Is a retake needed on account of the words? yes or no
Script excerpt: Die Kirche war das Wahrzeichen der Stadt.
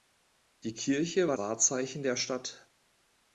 yes